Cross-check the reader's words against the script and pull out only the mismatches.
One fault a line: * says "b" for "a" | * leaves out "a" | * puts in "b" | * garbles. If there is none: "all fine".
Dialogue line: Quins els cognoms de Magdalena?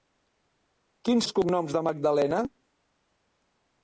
all fine